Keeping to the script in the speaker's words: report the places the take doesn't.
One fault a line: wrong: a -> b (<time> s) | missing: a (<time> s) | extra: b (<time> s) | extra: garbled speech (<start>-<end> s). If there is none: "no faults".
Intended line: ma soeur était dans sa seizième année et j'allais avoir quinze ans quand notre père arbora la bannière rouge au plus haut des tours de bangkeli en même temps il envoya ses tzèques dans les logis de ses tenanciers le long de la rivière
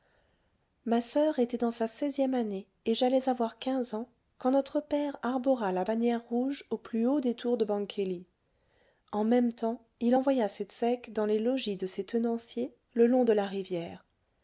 no faults